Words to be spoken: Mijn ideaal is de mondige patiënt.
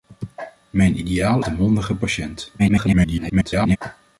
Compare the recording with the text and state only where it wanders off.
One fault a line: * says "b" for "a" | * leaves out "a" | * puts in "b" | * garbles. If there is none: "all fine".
* leaves out "is"
* garbles